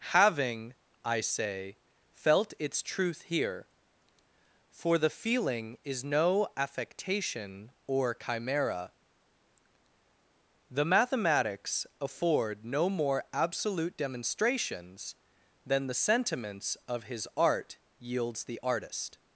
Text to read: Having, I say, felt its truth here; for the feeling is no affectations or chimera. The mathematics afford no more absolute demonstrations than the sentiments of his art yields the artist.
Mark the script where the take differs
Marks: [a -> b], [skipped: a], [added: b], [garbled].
Having, I say, felt its truth here; for the feeling is no [affectations -> affectation] or chimera. The mathematics afford no more absolute demonstrations than the sentiments of his art yields the artist.